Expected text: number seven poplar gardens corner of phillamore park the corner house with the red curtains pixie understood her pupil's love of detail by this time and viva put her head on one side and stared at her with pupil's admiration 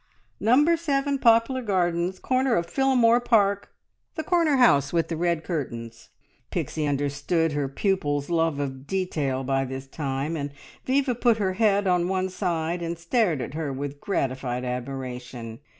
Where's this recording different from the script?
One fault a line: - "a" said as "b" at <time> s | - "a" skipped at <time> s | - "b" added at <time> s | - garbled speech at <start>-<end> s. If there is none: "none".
- "pupil's" said as "gratified" at 14.0 s